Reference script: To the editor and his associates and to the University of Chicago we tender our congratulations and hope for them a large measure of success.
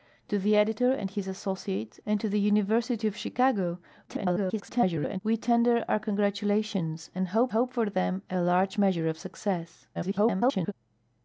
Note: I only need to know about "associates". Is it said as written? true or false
true